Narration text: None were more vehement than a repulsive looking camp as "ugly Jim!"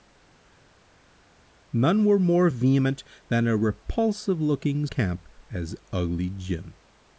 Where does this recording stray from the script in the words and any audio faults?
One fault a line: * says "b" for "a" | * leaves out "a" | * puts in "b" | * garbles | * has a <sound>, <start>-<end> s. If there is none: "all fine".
all fine